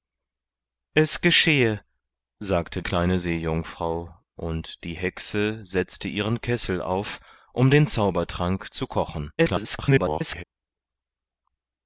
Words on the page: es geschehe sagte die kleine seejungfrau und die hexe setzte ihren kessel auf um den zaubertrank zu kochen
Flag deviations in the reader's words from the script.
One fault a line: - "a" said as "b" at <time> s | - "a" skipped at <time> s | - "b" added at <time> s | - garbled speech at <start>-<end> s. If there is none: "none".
- "die" skipped at 2.8 s
- garbled speech at 9.4-10.4 s